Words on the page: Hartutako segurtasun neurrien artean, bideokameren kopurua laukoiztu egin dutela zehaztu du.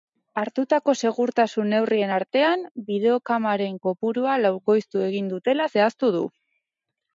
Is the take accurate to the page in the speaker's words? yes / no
yes